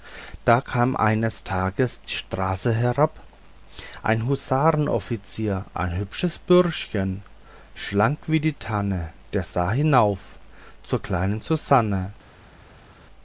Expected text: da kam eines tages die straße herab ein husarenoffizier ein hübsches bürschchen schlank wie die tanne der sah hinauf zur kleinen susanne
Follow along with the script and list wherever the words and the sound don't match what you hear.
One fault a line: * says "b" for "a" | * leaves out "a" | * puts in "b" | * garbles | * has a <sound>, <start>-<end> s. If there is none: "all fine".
all fine